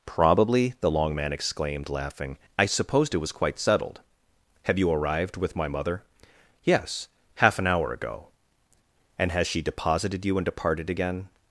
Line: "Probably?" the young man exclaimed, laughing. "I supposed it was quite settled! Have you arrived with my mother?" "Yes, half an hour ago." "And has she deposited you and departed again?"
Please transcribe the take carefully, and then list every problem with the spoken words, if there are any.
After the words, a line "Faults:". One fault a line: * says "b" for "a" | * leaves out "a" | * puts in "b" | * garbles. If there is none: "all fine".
"Probably?" the long man exclaimed, laughing. "I supposed it was quite settled! Have you arrived with my mother?" "Yes, half an hour ago." "And has she deposited you and departed again?"
Faults:
* says "long" for "young"